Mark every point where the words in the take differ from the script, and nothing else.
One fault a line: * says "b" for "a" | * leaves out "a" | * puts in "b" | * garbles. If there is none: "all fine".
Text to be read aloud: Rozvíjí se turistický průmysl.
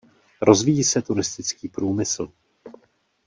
all fine